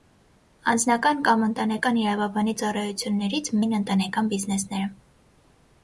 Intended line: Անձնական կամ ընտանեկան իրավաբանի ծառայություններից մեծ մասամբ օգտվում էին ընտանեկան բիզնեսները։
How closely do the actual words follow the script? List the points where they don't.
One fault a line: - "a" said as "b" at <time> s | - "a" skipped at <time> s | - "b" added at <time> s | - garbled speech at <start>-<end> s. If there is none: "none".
- "մեծ մասամբ օգտվում" skipped at 3.5 s